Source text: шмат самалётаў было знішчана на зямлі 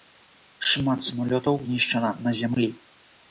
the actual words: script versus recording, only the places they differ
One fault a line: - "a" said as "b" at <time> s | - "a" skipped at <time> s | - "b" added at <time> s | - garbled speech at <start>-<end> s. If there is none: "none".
- "было" skipped at 1.6 s